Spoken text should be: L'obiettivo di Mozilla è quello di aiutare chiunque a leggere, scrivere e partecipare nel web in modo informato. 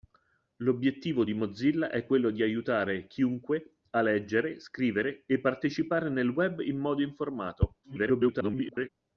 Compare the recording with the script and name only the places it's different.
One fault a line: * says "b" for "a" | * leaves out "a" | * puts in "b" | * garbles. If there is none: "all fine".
* garbles